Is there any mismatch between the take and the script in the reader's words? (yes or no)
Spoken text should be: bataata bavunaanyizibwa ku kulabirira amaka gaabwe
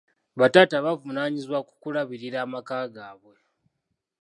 no